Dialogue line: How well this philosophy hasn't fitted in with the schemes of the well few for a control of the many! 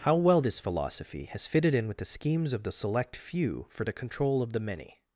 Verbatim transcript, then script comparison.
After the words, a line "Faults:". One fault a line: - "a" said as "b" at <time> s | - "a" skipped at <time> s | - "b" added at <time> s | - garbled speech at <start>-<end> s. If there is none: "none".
How well this philosophy has fitted in with the schemes of the select few for the control of the many!
Faults:
- "hasn't" said as "has" at 1.2 s
- "well" said as "select" at 2.7 s
- "a" said as "the" at 3.8 s